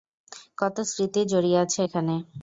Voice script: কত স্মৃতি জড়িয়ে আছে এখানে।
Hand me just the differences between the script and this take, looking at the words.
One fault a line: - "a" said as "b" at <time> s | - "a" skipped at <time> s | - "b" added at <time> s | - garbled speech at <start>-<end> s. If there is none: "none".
none